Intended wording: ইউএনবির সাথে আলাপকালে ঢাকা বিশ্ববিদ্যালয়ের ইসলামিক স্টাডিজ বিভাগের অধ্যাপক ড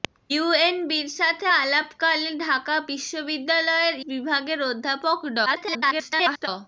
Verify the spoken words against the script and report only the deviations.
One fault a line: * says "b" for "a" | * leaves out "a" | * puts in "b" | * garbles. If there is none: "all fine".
* leaves out "ইসলামিক স্টাডিজ"
* garbles